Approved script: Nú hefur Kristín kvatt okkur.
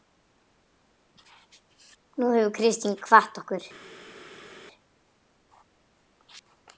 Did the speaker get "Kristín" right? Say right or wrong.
right